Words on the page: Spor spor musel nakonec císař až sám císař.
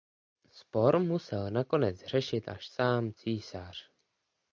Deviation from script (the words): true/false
true